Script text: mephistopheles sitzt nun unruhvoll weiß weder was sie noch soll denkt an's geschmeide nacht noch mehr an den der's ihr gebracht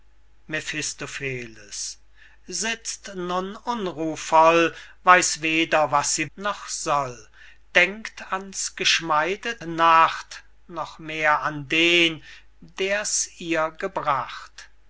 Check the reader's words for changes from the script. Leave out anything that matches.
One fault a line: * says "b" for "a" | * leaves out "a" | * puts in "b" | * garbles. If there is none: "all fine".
all fine